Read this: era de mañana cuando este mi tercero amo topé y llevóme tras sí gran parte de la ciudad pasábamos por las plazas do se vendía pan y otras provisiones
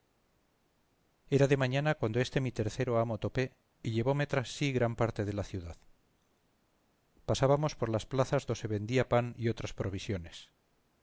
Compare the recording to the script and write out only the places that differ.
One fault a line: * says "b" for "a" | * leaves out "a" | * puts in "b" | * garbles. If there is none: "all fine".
all fine